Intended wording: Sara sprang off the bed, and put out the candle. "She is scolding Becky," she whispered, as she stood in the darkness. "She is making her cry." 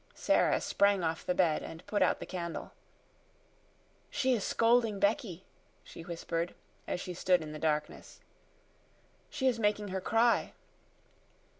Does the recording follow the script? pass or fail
pass